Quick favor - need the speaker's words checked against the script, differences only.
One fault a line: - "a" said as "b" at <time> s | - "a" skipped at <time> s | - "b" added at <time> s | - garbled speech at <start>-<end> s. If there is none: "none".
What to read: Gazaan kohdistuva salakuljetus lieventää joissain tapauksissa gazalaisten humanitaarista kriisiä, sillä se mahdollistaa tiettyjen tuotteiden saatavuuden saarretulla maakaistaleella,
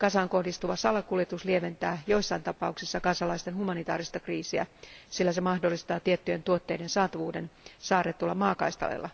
none